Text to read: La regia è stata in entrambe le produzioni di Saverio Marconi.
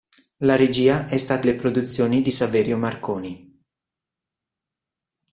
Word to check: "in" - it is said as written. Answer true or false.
false